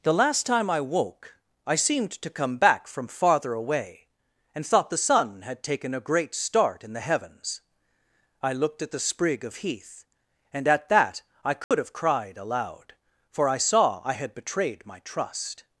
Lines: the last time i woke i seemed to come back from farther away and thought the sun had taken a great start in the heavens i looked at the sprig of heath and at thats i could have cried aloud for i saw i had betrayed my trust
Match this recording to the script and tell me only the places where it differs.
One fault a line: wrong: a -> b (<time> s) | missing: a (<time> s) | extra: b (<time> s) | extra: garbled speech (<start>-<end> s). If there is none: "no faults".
wrong: thats -> that (10.9 s)